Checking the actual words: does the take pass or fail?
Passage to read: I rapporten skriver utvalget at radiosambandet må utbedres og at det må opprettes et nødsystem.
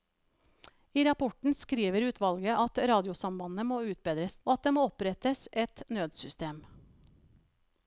pass